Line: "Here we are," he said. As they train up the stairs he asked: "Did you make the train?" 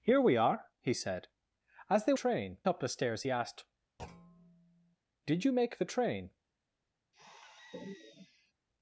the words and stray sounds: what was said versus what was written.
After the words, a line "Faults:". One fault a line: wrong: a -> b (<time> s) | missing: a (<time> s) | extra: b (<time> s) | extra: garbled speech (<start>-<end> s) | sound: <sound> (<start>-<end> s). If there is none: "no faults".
"Here we are," he said. As they train up the stairs he asked: "Did you make the train?"
Faults:
sound: thud (4.0-5.0 s)
sound: sigh (7.1-8.5 s)